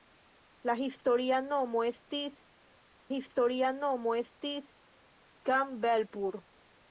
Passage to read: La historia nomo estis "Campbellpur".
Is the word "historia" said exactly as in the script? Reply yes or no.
yes